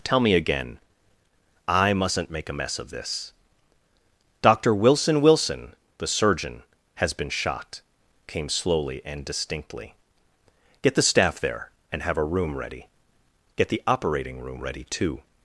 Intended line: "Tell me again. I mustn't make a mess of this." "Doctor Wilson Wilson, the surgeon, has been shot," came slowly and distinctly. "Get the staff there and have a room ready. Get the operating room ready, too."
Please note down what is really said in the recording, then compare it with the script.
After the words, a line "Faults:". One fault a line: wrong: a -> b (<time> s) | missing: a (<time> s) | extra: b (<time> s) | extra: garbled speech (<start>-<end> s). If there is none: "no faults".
"Tell me again. I mustn't make a mess of this." "Doctor Wilson Wilson, the surgeon, has been shot," came slowly and distinctly. "Get the staff there and have a room ready. Get the operating room ready, too."
Faults:
no faults